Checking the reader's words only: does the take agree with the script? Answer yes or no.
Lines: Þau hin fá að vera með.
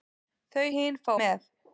no